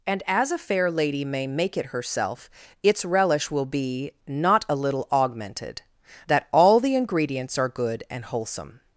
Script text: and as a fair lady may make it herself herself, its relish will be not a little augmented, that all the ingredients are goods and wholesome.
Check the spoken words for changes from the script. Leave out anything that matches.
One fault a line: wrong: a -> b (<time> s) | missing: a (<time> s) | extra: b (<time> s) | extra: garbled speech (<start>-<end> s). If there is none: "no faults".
missing: herself (2.5 s)
wrong: goods -> good (7.7 s)